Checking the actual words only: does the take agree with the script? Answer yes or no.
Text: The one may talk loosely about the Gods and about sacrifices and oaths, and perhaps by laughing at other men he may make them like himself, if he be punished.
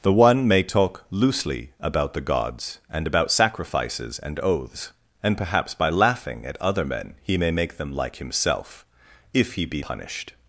yes